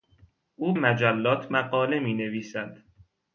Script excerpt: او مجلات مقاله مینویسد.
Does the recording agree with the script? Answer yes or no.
yes